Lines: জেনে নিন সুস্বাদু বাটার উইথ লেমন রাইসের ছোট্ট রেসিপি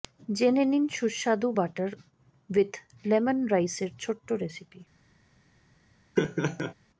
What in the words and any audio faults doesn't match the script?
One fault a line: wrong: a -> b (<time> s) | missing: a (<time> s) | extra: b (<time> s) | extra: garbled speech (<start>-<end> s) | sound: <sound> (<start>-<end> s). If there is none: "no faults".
sound: laugh (6.2-6.7 s)